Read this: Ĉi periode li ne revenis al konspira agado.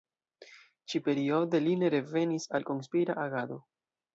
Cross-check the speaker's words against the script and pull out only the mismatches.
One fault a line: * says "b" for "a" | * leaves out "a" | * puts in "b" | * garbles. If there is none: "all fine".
all fine